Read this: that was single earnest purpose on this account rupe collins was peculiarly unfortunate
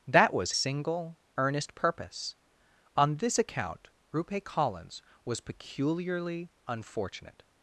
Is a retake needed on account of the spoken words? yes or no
no